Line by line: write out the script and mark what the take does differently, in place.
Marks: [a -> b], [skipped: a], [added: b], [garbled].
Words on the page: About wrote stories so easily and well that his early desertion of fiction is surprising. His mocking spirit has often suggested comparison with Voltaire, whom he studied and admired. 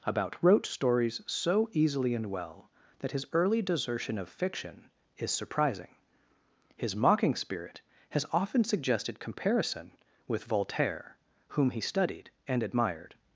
About wrote stories so easily and well that his early desertion of fiction is surprising. His mocking spirit has often suggested comparison with Voltaire, whom he studied and admired.